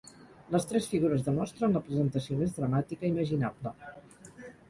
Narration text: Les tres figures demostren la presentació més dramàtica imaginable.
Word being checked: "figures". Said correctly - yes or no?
yes